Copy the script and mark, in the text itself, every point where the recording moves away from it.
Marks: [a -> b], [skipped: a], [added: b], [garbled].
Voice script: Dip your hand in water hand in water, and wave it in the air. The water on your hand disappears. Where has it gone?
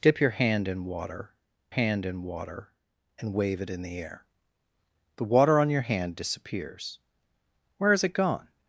Dip your hand in water hand in water, and wave it in the air. The water on your hand disappears. Where has it gone?